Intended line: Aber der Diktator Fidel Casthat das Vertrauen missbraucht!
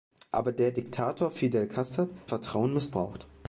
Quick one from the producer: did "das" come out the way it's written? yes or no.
no